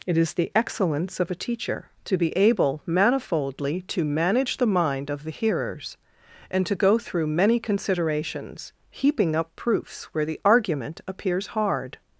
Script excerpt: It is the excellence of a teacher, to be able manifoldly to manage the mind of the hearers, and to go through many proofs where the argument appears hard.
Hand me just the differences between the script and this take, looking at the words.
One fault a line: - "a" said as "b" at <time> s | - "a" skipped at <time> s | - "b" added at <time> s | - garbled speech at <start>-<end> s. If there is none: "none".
- "considerations heaping up" added at 7.6 s